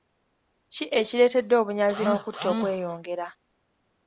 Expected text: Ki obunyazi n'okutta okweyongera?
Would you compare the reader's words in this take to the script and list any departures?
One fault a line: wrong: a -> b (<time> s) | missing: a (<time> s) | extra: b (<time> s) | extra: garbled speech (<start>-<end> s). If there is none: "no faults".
extra: ekireetedde (1.0 s)